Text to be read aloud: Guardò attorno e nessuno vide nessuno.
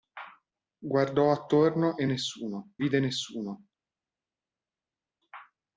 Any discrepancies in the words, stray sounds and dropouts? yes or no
no